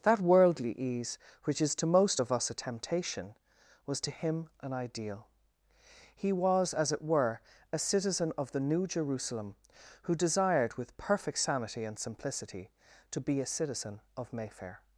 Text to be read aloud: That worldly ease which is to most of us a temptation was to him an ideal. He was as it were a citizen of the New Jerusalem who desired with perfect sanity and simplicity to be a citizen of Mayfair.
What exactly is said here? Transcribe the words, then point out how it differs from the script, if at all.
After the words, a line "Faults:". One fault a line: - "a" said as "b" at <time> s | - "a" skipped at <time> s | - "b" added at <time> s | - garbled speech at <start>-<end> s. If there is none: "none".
That worldly ease which is to most of us a temptation was to him an ideal. He was as it were a citizen of the New Jerusalem who desired with perfect sanity and simplicity to be a citizen of Mayfair.
Faults:
none